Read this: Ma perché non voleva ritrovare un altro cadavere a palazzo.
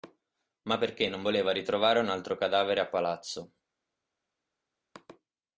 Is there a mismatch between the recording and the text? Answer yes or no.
no